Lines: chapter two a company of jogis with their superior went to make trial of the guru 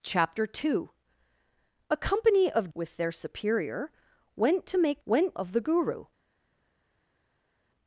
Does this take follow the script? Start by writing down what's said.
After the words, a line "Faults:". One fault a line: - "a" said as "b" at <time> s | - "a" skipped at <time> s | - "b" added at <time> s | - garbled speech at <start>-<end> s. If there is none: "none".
chapter two a company of with their superior went to make went of the guru
Faults:
- "jogis" skipped at 2.7 s
- "trial" said as "went" at 5.1 s